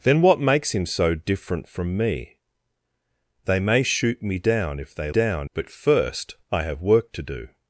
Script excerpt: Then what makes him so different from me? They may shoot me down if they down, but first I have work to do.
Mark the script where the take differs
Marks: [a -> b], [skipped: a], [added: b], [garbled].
Then what makes him so different from me? They may shoot me down if they down, but first I have work to do.